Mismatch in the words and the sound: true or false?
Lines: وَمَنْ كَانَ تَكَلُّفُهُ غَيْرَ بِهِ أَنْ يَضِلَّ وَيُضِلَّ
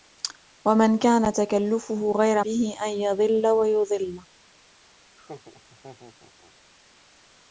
true